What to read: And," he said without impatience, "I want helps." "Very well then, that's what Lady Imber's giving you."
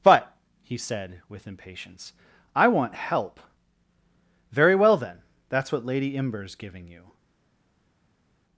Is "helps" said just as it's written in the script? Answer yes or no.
no